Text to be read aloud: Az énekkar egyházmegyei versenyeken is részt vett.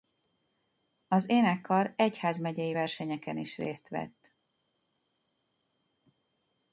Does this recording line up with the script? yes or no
yes